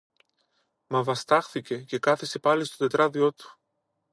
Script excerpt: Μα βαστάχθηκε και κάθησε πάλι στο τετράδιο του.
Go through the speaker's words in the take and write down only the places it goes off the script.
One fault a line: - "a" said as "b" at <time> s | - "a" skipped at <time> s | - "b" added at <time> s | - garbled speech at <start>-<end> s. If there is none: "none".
none